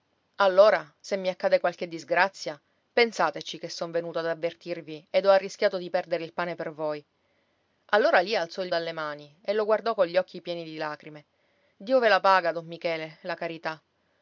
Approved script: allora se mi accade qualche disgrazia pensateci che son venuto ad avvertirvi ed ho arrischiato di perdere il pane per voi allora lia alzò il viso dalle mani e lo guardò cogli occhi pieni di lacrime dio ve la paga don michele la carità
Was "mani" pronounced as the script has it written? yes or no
yes